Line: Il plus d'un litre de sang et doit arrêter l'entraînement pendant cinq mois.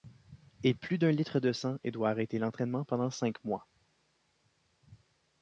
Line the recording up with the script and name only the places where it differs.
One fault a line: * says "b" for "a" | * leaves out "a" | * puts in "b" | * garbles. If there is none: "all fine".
all fine